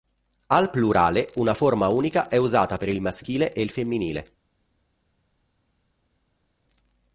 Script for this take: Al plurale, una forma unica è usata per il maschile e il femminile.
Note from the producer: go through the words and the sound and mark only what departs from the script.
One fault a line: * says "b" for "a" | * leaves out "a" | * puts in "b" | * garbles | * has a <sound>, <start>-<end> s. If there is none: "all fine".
all fine